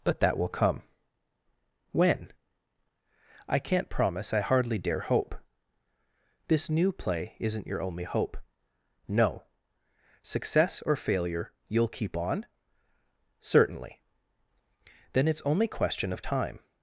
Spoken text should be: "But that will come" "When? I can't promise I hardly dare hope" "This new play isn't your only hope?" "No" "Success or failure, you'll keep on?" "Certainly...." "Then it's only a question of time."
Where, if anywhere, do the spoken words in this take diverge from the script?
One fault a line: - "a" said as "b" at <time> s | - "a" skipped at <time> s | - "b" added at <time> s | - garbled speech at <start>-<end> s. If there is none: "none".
- "a" skipped at 15.7 s